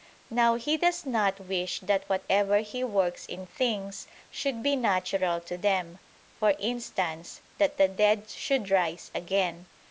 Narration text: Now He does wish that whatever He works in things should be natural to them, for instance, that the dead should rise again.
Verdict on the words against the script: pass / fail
fail